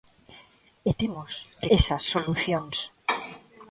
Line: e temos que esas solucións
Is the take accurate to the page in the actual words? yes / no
yes